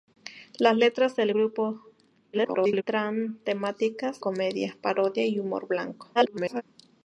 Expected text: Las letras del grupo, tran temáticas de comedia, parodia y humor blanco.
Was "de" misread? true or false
true